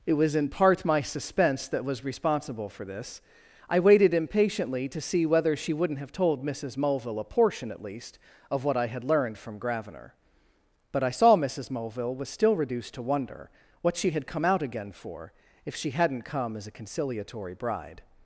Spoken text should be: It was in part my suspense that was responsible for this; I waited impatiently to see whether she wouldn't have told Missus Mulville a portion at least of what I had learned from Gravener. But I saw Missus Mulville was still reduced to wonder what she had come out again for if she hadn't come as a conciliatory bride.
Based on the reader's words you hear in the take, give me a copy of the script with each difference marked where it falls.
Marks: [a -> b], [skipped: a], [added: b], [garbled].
It was in part my suspense that was responsible for this; I waited impatiently to see whether she wouldn't have told Missus Mulville a portion at least of what I had learned from Gravener. But I saw Missus Mulville was still reduced to wonder what she had come out again for if she hadn't come as a conciliatory bride.